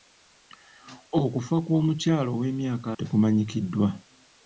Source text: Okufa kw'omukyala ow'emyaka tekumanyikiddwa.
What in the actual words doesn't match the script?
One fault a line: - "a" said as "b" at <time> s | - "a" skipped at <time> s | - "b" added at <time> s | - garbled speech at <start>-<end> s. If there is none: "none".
none